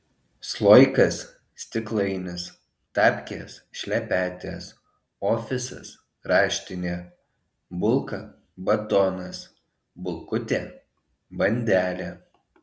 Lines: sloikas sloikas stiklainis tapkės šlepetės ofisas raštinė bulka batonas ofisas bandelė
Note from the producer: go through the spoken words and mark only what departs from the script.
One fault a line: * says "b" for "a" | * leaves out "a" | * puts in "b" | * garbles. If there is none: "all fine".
* leaves out "sloikas"
* says "bulkutė" for "ofisas"